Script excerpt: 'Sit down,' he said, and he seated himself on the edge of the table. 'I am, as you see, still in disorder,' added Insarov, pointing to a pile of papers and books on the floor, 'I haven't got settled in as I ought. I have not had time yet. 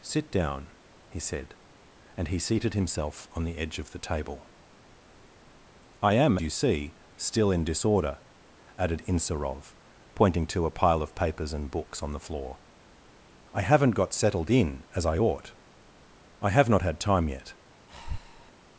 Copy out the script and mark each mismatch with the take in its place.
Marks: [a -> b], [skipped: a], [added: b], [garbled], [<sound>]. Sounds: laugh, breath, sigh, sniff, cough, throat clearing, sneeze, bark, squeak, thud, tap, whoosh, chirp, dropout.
'Sit down,' he said, and he seated himself on the edge of the table. 'I am, [skipped: as] you see, still in disorder,' added Insarov, pointing to a pile of papers and books on the floor, 'I haven't got settled in as I ought. I have not had time yet. [breath]